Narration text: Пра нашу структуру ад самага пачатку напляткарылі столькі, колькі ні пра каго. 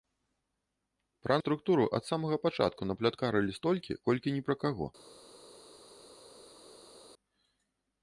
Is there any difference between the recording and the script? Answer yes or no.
yes